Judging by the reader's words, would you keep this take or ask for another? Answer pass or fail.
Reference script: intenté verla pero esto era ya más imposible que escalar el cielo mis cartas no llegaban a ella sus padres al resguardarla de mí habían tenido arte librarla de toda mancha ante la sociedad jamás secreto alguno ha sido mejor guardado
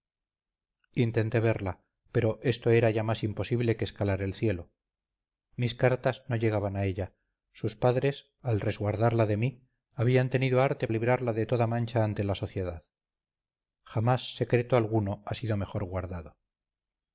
pass